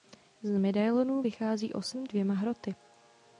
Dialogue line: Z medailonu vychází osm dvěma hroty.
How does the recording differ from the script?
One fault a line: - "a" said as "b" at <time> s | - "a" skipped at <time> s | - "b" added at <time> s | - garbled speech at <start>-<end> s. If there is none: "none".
none